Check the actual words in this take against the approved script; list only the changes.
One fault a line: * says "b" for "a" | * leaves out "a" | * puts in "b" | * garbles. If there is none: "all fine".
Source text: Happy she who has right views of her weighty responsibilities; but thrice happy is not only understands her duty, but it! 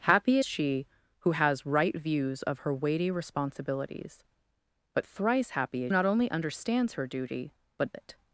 all fine